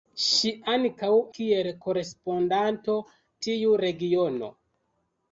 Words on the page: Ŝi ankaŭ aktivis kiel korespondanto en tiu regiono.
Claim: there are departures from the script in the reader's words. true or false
true